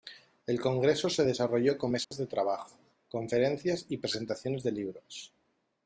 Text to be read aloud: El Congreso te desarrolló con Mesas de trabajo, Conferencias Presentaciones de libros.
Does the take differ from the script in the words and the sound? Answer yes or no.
yes